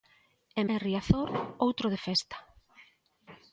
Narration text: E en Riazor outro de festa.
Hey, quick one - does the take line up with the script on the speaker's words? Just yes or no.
yes